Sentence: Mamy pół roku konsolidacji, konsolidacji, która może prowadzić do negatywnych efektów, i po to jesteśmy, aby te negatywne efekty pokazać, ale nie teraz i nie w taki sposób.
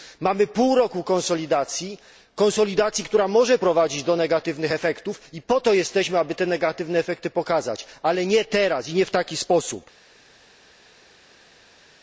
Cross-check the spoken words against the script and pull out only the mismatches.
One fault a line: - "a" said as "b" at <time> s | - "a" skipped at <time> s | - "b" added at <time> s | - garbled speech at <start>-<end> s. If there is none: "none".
none